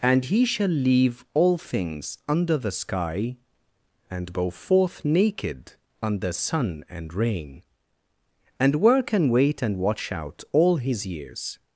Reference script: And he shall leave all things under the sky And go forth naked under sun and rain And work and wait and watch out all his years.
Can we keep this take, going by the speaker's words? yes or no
yes